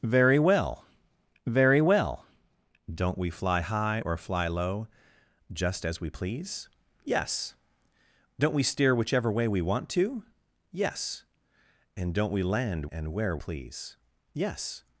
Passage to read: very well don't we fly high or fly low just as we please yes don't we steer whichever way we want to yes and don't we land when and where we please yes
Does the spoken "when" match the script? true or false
false